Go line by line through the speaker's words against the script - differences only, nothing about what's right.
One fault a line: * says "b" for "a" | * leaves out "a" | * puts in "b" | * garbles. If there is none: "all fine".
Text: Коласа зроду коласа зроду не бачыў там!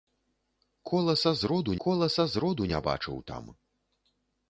all fine